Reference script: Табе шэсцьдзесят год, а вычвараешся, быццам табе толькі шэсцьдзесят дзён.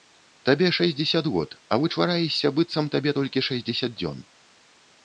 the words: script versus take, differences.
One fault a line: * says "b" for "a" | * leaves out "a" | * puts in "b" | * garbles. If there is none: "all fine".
all fine